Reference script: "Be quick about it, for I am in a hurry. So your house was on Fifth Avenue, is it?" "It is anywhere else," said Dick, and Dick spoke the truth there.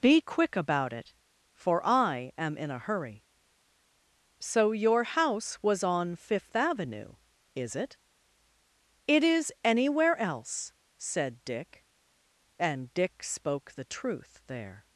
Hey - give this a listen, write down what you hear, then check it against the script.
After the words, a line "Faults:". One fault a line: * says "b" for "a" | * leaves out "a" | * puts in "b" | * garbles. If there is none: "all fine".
"Be quick about it, for I am in a hurry. So your house was on Fifth Avenue, is it?" "It is anywhere else," said Dick, and Dick spoke the truth there.
Faults:
all fine